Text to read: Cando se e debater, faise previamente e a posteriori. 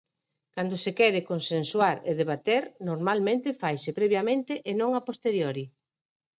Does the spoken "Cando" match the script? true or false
true